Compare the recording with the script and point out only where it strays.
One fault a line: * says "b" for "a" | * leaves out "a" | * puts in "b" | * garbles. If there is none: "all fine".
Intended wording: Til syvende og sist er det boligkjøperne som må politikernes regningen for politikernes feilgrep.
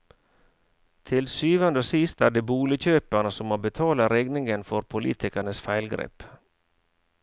* says "betale" for "politikernes"